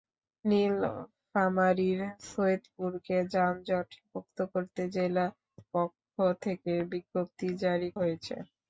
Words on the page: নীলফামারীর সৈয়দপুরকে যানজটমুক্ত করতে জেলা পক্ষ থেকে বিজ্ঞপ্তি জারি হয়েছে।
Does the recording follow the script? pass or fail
pass